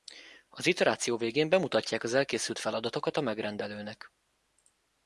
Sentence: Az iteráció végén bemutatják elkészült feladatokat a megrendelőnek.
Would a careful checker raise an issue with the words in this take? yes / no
yes